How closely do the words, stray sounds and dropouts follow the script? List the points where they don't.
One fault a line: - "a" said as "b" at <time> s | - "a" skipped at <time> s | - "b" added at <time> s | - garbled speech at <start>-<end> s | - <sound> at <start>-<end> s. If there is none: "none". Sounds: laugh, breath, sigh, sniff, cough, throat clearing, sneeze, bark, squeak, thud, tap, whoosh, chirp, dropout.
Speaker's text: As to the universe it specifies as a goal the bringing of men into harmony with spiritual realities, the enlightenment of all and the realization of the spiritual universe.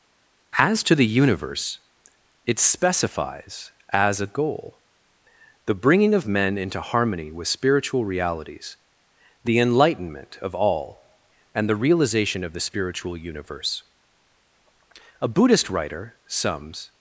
- "A Buddhist writer sums" added at 15.2 s